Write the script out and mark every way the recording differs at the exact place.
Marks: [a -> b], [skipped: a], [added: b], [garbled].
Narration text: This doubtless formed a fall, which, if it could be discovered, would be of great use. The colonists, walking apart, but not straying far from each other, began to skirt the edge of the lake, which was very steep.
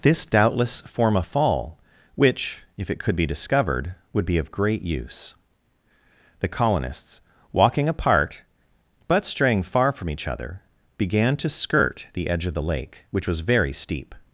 This doubtless [formed -> form] a fall, which, if it could be discovered, would be of great use. The colonists, walking apart, but [skipped: not] straying far from each other, began to skirt the edge of the lake, which was very steep.